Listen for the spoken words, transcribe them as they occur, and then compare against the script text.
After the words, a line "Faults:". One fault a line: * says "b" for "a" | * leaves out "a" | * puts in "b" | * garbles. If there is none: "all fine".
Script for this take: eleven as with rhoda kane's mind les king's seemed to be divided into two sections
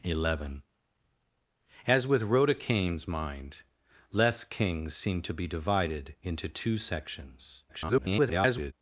eleven as with rhoda kane's mind les king's seemed to be divided into two sections [garbled]
Faults:
* garbles